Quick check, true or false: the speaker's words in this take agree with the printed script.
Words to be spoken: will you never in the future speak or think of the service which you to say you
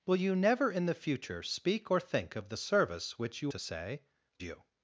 true